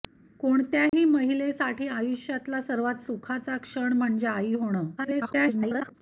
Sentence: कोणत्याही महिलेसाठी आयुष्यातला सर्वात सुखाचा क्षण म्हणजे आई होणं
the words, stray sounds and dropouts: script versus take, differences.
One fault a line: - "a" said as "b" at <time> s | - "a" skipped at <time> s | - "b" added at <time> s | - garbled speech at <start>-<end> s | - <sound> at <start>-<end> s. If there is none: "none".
- dropout at 0.9-0.9 s
- garbled speech at 5.0-5.9 s